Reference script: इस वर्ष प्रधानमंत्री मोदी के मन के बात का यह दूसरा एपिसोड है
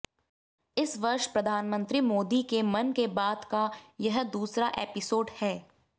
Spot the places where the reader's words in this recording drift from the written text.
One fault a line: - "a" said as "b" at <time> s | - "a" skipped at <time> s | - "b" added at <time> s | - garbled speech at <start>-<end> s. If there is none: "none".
none